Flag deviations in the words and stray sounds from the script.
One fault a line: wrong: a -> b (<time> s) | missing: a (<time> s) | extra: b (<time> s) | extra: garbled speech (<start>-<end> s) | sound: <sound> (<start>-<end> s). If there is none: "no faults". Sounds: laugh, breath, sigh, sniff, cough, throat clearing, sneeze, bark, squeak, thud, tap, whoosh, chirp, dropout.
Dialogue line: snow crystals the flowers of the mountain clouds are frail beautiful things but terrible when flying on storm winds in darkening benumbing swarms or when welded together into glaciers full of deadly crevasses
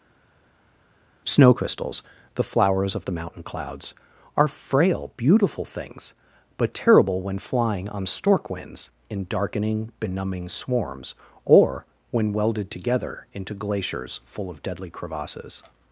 wrong: storm -> stork (8.1 s)